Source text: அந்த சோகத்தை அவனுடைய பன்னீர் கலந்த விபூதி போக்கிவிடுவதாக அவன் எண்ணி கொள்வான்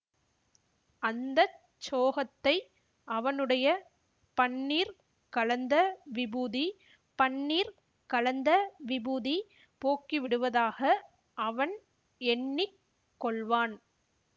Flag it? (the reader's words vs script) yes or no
yes